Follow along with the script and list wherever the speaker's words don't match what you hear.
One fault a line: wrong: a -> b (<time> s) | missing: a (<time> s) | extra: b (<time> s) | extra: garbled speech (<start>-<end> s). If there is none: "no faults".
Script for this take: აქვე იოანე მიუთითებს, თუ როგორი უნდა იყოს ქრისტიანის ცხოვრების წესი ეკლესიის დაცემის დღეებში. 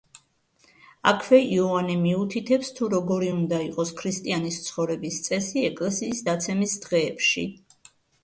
no faults